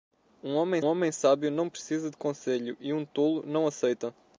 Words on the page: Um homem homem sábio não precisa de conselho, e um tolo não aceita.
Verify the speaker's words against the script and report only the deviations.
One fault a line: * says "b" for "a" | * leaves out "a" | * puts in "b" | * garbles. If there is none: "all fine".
all fine